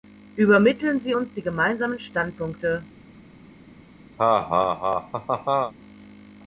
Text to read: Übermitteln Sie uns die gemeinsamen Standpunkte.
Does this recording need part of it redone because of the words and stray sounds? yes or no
yes